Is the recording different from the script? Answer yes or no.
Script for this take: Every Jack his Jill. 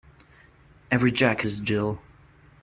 no